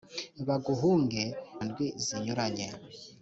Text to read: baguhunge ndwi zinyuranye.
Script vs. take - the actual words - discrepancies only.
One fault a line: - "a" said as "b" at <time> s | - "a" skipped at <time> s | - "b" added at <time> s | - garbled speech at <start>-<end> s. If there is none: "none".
none